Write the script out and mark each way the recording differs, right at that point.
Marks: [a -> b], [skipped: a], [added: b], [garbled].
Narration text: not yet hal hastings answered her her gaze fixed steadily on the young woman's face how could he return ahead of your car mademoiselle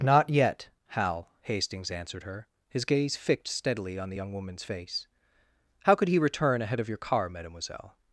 not yet hal hastings answered her [her -> his] gaze fixed steadily on the young woman's face how could he return ahead of your car mademoiselle